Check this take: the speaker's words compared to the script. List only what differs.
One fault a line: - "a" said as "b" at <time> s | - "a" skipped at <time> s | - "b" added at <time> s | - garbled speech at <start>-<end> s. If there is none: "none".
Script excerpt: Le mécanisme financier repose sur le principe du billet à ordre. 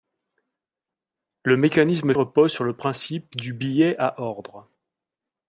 - "financier" skipped at 2.1 s